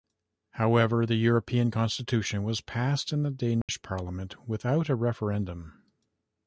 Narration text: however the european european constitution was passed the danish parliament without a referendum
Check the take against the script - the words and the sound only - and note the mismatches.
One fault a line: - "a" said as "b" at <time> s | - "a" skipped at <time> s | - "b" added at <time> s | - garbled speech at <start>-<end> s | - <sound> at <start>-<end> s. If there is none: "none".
- "european" skipped at 1.7 s
- "in" added at 3.1 s
- dropout at 3.6-3.7 s